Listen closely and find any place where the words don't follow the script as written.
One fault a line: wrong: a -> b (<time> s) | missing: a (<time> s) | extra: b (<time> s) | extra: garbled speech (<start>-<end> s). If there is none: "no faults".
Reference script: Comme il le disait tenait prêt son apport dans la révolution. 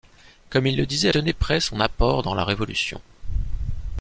no faults